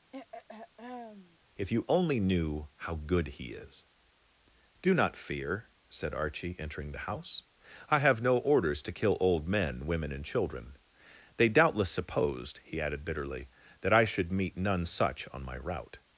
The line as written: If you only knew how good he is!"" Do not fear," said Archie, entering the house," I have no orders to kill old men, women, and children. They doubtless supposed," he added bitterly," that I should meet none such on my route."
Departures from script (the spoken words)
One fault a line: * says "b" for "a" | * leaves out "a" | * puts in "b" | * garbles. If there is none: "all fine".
all fine